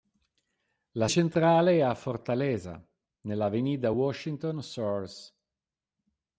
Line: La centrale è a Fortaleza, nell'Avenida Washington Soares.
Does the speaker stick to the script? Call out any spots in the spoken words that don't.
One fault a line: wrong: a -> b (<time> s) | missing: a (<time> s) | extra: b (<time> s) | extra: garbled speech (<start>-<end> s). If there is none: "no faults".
no faults